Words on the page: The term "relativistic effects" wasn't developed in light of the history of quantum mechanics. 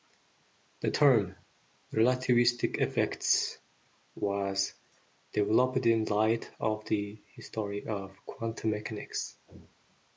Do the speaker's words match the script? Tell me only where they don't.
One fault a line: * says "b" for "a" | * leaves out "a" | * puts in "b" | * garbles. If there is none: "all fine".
* says "was" for "wasn't"